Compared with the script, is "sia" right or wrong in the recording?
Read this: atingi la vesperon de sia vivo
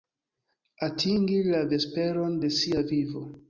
right